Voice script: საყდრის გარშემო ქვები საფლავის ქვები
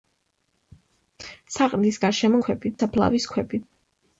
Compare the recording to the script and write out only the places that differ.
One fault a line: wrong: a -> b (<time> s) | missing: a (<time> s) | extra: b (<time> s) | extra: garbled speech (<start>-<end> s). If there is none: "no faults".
no faults